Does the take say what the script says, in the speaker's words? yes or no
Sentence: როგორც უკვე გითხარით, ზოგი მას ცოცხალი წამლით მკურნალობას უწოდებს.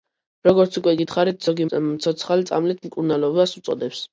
no